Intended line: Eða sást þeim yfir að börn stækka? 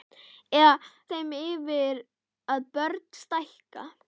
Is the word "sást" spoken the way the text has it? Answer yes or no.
no